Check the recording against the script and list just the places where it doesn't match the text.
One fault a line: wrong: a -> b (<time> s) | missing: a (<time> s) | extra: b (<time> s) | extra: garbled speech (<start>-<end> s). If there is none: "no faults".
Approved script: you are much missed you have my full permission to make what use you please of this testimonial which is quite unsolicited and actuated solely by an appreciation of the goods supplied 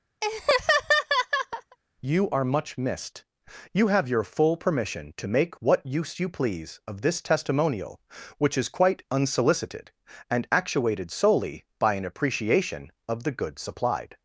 wrong: my -> your (4.1 s)